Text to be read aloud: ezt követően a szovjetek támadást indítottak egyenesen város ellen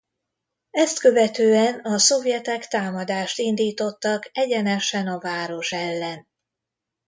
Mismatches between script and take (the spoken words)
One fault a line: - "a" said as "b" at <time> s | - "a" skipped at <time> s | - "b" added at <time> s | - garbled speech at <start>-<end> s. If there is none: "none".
- "a" added at 5.1 s